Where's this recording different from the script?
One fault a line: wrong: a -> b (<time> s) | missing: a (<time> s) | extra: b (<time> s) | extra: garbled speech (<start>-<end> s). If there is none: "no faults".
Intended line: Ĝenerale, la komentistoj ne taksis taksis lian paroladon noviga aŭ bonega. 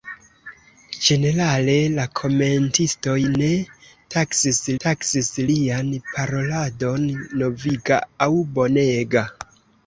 no faults